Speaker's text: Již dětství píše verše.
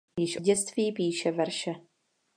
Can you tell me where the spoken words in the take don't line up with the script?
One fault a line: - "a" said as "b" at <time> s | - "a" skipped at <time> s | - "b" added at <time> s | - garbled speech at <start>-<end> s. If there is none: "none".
none